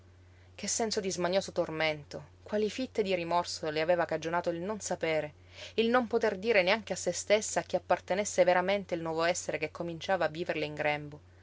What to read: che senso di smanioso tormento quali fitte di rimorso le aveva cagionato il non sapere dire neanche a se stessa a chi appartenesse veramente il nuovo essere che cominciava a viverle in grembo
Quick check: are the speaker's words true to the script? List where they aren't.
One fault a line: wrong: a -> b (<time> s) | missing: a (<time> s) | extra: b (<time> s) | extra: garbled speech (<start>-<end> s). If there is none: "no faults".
extra: il non poter (5.8 s)